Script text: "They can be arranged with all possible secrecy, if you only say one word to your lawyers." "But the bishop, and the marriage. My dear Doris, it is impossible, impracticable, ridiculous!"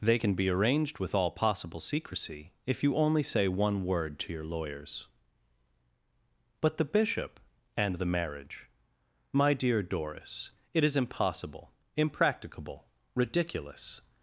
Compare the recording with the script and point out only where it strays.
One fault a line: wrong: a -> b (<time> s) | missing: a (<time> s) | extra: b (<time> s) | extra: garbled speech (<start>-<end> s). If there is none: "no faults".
no faults